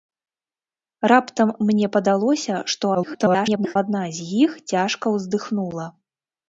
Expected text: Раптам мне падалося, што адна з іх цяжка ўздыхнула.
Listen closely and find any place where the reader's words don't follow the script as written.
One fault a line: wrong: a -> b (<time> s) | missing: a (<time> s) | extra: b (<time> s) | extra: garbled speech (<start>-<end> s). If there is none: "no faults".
extra: garbled speech (2.9-3.8 s)